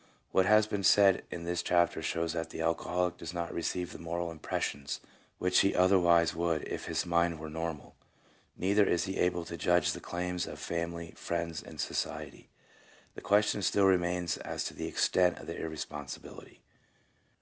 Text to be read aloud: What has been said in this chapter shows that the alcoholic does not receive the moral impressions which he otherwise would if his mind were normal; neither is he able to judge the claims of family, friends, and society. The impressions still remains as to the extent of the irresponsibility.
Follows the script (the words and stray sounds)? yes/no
no